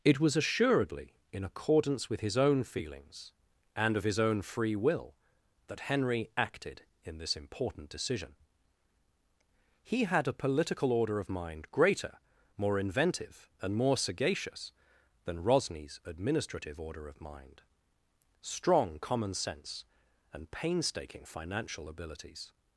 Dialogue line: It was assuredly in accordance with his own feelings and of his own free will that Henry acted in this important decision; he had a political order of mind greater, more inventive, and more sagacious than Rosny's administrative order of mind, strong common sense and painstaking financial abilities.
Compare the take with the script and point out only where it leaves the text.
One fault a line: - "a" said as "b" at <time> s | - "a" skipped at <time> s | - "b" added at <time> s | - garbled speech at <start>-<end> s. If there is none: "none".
none